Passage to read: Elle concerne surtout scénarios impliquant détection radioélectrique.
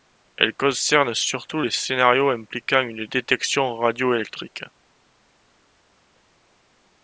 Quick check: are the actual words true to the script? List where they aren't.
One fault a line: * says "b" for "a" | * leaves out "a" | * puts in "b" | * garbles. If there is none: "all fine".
* puts in "les"
* puts in "une"